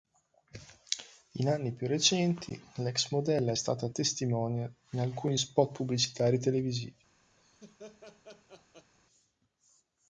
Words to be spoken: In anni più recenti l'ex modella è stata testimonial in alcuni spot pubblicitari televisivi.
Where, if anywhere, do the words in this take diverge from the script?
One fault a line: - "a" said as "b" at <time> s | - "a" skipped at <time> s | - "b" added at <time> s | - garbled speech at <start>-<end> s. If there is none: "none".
none